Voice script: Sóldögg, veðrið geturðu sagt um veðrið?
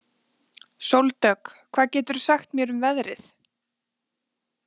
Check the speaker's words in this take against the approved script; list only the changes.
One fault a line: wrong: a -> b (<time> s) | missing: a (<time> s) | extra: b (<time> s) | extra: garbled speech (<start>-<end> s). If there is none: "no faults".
wrong: veðrið -> hvað (1.8 s)
extra: mér (2.6 s)